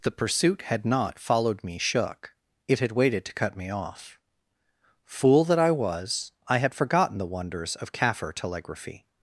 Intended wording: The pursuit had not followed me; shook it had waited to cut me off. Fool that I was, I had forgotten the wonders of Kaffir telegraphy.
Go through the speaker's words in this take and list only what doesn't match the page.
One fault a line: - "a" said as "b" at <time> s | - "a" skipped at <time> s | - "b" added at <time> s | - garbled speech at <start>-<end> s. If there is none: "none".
none